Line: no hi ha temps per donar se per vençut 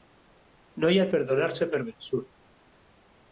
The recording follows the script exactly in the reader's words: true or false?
false